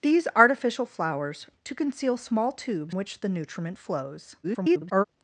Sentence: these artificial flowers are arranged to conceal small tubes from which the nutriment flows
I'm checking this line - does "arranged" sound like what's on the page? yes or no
no